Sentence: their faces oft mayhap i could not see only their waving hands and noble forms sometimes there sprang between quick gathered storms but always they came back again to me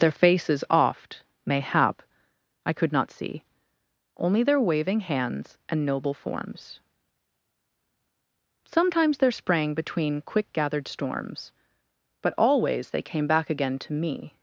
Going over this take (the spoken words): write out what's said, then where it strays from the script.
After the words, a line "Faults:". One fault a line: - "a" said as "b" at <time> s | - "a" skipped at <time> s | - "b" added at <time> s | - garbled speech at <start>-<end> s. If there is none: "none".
their faces oft mayhap i could not see only their waving hands and noble forms sometimes there sprang between quick gathered storms but always they came back again to me
Faults:
none